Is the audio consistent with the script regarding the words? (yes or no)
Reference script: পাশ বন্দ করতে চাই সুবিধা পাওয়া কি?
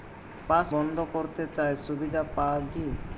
yes